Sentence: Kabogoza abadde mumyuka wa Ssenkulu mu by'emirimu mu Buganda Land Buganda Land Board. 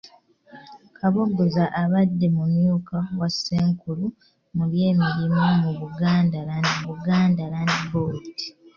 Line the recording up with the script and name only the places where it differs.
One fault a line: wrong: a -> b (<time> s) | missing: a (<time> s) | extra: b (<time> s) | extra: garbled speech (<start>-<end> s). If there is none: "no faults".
no faults